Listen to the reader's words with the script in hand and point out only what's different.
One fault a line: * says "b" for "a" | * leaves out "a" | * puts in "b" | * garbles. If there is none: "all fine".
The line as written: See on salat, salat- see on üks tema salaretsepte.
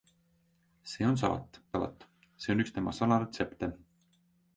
all fine